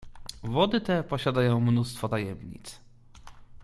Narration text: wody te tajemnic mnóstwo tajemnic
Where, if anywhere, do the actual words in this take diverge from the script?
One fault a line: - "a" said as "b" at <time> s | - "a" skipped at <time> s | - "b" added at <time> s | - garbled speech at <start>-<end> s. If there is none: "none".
- "tajemnic" said as "posiadają" at 1.0 s